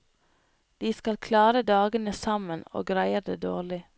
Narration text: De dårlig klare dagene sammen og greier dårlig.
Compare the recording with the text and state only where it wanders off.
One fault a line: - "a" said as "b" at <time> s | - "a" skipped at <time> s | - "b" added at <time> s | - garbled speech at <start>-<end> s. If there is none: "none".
- "dårlig" said as "skal" at 0.9 s
- "det" added at 3.2 s